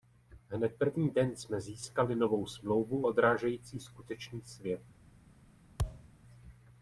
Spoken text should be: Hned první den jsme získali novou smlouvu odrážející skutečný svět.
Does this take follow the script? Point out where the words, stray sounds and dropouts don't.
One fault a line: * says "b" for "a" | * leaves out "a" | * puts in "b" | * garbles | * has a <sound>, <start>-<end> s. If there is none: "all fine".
* has a thud, 5.8-6.1 s